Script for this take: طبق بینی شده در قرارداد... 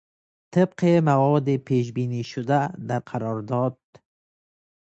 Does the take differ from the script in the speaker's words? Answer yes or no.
yes